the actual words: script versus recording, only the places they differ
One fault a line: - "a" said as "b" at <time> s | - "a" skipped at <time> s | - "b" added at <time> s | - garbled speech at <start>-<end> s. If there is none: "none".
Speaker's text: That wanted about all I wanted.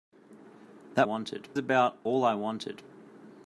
none